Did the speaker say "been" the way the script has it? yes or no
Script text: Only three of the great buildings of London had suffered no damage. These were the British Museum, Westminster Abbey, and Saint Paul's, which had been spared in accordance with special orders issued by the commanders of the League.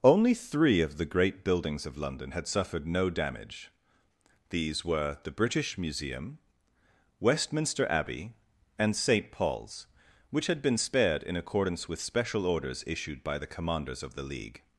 yes